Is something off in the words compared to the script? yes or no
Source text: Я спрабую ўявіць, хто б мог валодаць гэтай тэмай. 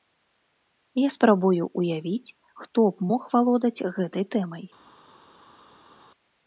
no